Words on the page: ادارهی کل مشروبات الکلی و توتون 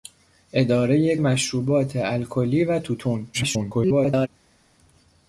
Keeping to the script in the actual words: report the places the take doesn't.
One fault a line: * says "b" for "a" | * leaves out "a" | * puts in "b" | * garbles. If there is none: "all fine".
* leaves out "کل"
* garbles